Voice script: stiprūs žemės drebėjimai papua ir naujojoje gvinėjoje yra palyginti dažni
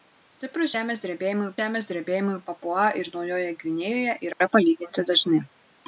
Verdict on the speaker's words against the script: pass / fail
fail